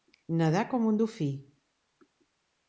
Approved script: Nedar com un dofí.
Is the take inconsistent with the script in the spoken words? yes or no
no